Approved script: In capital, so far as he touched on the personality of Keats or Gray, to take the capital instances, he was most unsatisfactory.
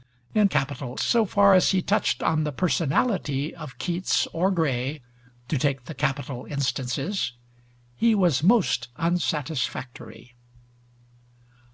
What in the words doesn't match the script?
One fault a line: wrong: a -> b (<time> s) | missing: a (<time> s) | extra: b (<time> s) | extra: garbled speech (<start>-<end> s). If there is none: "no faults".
no faults